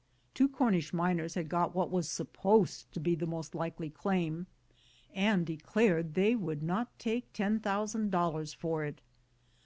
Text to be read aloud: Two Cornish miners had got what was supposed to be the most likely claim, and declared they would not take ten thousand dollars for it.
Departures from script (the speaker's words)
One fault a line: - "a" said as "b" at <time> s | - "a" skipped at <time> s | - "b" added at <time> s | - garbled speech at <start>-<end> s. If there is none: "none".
none